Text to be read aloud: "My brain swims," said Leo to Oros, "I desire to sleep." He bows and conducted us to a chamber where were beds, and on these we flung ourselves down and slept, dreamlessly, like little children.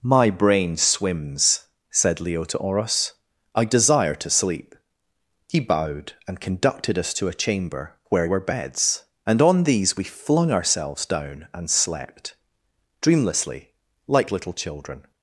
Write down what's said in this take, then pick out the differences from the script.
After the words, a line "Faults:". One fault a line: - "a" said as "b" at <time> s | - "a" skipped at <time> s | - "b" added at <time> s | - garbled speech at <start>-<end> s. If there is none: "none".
"My brain swims," said Leo to Oros, "I desire to sleep." He bowed and conducted us to a chamber where were beds, and on these we flung ourselves down and slept, dreamlessly, like little children.
Faults:
- "bows" said as "bowed" at 5.6 s